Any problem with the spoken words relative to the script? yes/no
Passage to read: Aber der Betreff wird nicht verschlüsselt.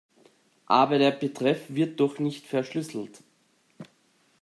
yes